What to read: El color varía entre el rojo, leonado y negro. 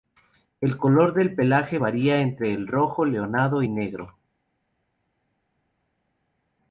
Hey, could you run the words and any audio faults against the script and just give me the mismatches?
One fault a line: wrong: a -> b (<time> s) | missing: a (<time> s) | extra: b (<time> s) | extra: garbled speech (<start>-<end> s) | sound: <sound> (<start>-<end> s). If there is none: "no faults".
extra: del pelaje (1.1 s)